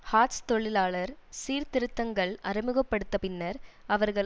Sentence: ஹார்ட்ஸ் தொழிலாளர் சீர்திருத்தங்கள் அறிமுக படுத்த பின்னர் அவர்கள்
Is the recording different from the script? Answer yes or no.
no